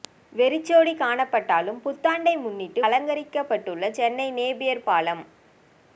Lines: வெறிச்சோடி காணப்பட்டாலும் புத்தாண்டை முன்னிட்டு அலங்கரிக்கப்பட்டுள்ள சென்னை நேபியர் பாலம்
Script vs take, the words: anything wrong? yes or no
no